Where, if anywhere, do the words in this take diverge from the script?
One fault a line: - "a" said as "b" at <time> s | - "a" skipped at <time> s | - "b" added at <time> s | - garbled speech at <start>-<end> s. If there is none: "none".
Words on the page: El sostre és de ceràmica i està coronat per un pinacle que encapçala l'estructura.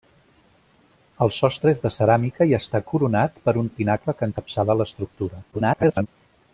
- garbled speech at 5.5-6.1 s